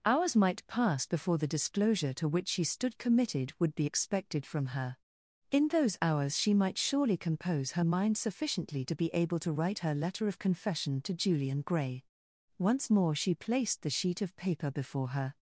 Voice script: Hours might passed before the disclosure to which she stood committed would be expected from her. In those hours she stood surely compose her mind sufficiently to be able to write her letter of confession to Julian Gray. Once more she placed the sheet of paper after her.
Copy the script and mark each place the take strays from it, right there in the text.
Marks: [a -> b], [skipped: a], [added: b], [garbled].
Hours might [passed -> pass] before the disclosure to which she stood committed would be expected from her. In those hours she [stood -> might] surely compose her mind sufficiently to be able to write her letter of confession to Julian Gray. Once more she placed the sheet of paper [after -> before] her.